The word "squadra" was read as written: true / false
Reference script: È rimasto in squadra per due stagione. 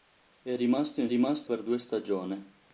false